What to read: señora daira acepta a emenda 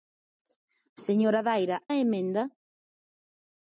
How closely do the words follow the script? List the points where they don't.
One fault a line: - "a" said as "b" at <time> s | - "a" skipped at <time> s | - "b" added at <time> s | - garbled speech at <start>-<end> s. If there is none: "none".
- "acepta" skipped at 1.8 s